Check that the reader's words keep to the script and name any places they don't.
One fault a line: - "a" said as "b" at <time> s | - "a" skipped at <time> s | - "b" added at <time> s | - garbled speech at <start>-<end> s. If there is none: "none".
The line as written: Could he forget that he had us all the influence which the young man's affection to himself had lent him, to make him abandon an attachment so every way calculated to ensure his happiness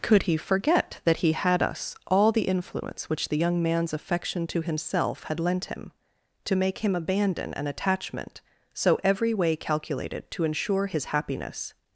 none